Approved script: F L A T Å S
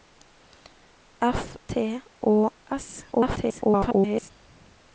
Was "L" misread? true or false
true